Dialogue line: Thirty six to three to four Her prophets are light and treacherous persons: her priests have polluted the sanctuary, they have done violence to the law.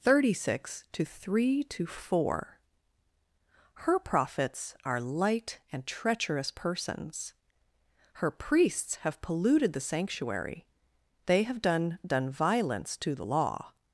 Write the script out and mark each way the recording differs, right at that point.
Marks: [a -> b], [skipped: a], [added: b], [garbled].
Thirty six to three to four Her prophets are light and treacherous persons: her priests have polluted the sanctuary, they have done [added: done] violence to the law.